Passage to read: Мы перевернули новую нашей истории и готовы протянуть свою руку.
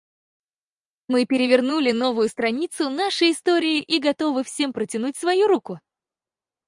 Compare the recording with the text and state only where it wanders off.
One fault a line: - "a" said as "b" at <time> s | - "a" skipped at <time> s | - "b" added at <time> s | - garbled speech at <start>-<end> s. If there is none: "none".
- "страницу" added at 2.3 s
- "всем" added at 4.5 s